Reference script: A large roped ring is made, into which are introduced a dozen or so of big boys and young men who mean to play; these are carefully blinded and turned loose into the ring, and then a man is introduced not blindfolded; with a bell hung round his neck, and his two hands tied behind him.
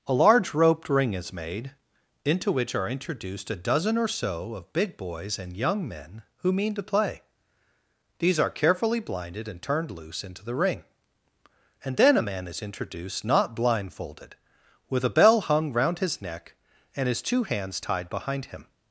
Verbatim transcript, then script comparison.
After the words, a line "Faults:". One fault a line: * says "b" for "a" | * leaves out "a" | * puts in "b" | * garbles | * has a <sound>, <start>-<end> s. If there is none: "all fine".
A large roped ring is made, into which are introduced a dozen or so of big boys and young men who mean to play; these are carefully blinded and turned loose into the ring, and then a man is introduced not blindfolded; with a bell hung round his neck, and his two hands tied behind him.
Faults:
all fine